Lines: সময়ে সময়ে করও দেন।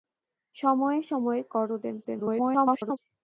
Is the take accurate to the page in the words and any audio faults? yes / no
no